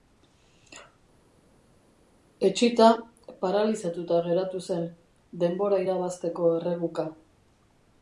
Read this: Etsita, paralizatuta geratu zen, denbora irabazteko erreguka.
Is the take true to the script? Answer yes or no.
yes